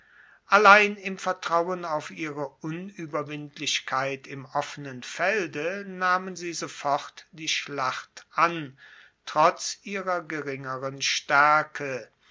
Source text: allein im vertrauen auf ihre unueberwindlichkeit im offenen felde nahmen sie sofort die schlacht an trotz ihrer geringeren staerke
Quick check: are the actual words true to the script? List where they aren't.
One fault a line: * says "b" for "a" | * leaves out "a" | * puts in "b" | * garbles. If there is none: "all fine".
all fine